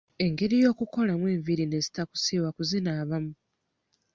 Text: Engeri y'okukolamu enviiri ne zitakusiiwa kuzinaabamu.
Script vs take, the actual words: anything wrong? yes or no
no